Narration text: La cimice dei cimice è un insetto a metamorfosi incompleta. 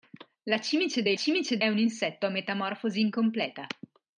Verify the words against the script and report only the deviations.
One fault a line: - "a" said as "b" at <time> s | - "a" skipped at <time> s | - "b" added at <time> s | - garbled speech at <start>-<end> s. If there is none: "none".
none